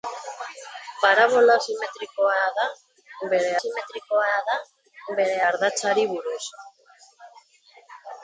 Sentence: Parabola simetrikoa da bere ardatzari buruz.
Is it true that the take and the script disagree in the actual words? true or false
true